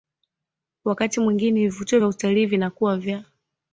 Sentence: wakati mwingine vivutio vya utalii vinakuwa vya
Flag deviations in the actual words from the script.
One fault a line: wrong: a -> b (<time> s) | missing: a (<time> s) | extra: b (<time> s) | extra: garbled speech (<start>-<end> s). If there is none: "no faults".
no faults